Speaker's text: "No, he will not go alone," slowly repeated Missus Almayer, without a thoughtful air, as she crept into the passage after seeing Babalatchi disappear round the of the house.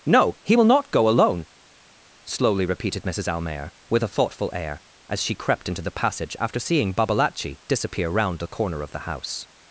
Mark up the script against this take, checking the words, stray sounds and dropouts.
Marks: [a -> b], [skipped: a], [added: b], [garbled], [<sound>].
"No, he will not go alone," slowly repeated Missus Almayer, [without -> with] a thoughtful air, as she crept into the passage after seeing Babalatchi disappear round the [added: corner] of the house.